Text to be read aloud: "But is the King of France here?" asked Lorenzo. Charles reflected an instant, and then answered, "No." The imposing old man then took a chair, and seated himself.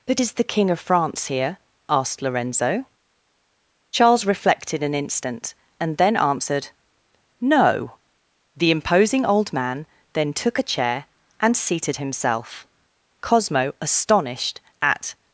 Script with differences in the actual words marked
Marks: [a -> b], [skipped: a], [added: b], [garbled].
"But is the King of France here?" asked Lorenzo. Charles reflected an instant, and then answered, "No." The imposing old man then took a chair, and seated himself. [added: Cosmo astonished at]